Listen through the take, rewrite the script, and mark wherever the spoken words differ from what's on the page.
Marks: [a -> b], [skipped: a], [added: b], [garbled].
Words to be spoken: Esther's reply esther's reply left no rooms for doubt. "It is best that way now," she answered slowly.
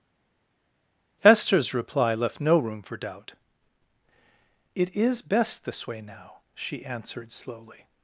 Esther's reply [skipped: esther's reply] left no [rooms -> room] for doubt. "It is best [that -> this] way now," she answered slowly.